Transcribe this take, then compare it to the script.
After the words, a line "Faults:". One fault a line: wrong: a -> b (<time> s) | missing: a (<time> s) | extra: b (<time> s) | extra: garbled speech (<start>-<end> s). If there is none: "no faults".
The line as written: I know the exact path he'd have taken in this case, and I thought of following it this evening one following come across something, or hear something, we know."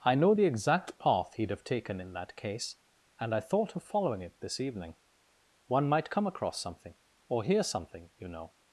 I know the exact path he'd have taken in that case, and I thought of following it this evening one might come across something, or hear something, you know."
Faults:
wrong: this -> that (2.1 s)
wrong: following -> might (5.9 s)
wrong: we -> you (8.2 s)